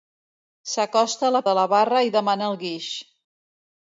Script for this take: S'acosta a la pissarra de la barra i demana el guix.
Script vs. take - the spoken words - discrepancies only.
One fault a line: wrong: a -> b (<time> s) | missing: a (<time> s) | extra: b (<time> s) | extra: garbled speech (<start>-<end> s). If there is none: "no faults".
missing: pissarra (1.4 s)